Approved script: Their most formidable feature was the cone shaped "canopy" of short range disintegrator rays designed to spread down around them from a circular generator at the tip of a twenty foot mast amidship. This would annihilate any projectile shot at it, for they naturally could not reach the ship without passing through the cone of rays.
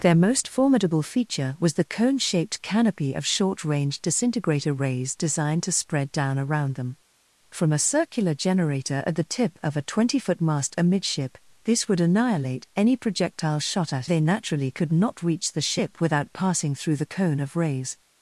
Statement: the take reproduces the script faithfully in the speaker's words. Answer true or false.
false